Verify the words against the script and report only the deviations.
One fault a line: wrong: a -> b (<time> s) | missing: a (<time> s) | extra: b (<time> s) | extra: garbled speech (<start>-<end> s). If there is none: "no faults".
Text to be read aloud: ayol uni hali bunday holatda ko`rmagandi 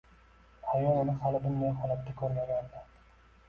no faults